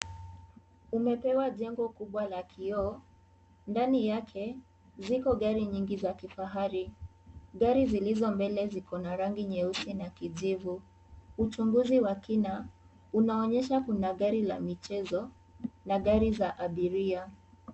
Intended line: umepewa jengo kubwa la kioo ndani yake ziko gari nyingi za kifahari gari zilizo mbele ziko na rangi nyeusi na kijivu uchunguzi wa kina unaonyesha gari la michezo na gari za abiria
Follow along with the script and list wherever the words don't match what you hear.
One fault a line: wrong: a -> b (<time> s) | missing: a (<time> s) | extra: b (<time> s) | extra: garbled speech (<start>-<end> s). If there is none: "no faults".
extra: kuna (13.8 s)